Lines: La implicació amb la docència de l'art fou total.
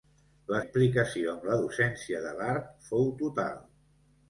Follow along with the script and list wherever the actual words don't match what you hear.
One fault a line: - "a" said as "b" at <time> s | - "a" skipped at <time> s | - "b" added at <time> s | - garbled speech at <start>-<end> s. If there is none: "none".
none